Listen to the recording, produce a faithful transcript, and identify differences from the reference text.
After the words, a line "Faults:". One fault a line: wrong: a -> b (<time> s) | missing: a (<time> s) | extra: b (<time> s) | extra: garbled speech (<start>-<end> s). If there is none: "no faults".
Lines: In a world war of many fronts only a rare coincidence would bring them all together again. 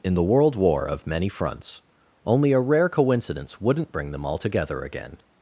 In the world war of many fronts only a rare coincidence wouldn't bring them all together again.
Faults:
wrong: a -> the (0.1 s)
wrong: would -> wouldn't (3.6 s)